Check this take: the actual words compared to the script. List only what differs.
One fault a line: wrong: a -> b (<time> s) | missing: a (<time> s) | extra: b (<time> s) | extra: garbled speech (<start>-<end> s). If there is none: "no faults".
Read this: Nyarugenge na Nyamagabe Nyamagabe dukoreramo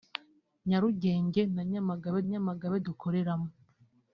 no faults